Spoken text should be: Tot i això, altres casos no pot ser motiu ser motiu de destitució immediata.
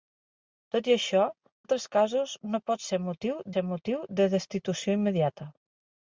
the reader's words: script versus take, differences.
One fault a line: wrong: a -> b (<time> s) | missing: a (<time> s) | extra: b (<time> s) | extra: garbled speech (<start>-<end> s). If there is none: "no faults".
no faults